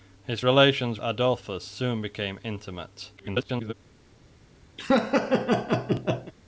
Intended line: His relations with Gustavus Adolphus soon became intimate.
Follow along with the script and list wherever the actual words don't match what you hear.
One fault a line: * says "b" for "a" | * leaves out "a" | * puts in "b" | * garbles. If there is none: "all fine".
* leaves out "with Gustavus"
* garbles